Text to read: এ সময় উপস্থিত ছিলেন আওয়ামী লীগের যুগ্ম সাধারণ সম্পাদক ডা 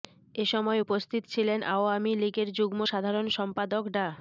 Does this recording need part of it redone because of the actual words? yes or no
no